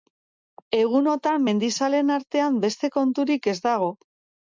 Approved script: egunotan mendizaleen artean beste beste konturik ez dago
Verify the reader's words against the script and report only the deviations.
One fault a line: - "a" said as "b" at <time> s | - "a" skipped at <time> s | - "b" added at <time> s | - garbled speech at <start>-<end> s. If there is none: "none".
- "beste" skipped at 3.0 s